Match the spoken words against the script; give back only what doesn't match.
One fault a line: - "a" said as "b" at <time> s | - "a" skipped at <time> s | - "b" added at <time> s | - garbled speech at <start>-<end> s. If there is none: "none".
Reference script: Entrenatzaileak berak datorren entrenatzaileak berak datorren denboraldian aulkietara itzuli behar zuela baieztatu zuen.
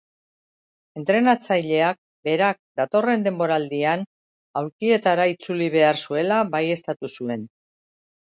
- "entrenatzaileak berak datorren" skipped at 3.2 s